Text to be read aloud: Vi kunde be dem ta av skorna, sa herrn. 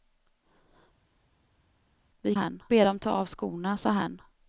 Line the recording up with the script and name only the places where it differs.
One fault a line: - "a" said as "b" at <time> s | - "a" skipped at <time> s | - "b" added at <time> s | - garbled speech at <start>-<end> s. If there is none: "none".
- "kunde" said as "herrn" at 2.3 s